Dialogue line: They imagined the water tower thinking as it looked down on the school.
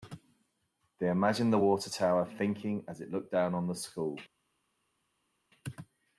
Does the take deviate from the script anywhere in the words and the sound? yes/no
no